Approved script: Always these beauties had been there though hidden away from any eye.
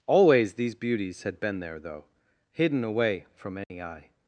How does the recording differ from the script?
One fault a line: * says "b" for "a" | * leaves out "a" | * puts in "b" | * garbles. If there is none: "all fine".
all fine